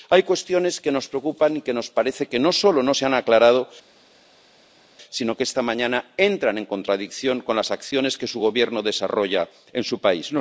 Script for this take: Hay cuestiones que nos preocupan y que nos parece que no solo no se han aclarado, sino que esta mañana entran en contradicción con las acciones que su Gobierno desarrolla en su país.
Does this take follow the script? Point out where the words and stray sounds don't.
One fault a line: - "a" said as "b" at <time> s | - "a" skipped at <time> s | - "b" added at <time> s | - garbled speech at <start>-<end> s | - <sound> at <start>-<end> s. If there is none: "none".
none